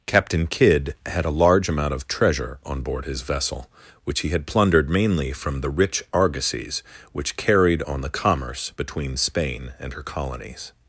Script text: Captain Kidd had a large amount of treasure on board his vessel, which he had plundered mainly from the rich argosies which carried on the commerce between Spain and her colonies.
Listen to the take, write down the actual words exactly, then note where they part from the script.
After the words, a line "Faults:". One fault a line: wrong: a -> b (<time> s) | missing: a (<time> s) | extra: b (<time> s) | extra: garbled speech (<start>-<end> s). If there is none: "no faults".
Captain Kidd had a large amount of treasure on board his vessel, which he had plundered mainly from the rich argosies which carried on the commerce between Spain and her colonies.
Faults:
no faults